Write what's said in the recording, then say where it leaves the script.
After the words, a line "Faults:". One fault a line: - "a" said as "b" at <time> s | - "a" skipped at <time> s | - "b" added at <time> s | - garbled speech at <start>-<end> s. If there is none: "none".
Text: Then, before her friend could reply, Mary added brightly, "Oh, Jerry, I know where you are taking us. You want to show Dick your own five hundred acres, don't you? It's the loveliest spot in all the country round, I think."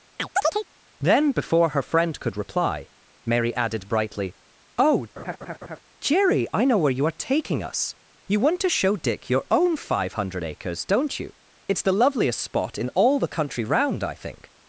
Then, before her friend could reply, Mary added brightly, "Oh, Jerry, I know where you are taking us. You want to show Dick your own five hundred acres, don't you? It's the loveliest spot in all the country round, I think."
Faults:
none